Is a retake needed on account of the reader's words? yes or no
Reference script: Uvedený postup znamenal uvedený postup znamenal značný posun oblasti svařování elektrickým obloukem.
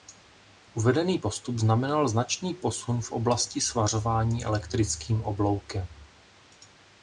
yes